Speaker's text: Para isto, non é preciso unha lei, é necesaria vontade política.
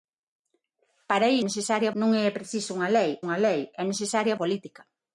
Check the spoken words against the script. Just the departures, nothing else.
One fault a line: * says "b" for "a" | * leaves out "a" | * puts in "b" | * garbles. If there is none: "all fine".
* says "necesaria" for "isto"
* puts in "unha lei"
* leaves out "vontade"